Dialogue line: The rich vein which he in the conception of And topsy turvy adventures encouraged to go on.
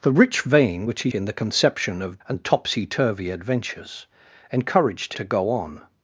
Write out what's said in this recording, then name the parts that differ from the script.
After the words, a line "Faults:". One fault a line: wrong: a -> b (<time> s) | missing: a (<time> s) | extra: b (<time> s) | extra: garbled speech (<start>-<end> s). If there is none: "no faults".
The rich vein which he in the conception of And topsy turvy adventures encouraged to go on.
Faults:
no faults